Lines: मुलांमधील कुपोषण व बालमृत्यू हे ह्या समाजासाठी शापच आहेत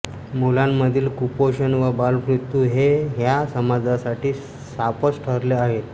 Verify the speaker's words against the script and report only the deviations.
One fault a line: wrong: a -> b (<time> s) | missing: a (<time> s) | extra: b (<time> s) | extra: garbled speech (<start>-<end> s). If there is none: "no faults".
extra: ठरले (5.2 s)